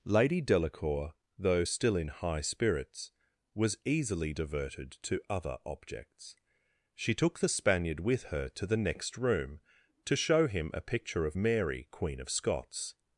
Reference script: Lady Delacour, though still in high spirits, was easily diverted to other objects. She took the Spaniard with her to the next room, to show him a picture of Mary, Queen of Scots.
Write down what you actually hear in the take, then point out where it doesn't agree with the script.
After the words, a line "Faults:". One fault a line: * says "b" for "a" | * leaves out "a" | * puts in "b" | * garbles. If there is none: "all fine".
Lady Delacour, though still in high spirits, was easily diverted to other objects. She took the Spaniard with her to the next room, to show him a picture of Mary, Queen of Scots.
Faults:
all fine